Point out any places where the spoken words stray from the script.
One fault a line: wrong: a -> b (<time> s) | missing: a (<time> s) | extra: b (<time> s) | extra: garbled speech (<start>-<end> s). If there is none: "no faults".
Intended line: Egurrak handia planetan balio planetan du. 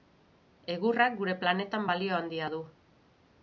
wrong: handia -> gure (1.2 s)
wrong: planetan -> handia (2.2 s)